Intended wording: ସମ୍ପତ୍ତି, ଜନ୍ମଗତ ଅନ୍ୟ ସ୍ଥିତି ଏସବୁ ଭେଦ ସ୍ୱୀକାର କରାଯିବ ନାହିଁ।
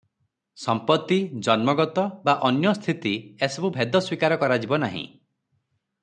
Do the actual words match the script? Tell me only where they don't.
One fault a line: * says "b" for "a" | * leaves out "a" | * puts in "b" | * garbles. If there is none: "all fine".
* puts in "ବା"